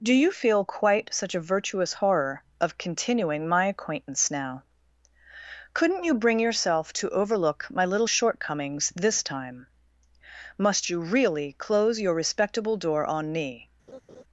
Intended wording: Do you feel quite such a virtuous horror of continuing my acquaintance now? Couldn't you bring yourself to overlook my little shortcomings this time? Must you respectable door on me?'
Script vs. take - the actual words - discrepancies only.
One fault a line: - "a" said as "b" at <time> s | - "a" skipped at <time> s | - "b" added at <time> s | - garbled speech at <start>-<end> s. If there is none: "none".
- "really close your" added at 11.0 s